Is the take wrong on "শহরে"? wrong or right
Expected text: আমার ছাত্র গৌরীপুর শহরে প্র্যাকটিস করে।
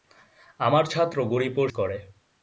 wrong